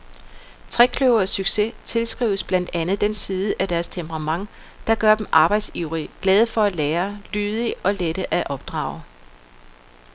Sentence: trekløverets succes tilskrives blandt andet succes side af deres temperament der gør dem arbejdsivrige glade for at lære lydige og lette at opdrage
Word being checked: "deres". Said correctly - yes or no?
yes